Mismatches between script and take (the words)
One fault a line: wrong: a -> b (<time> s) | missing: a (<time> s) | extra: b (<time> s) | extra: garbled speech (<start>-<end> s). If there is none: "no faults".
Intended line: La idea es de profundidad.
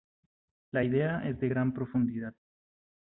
extra: gran (1.5 s)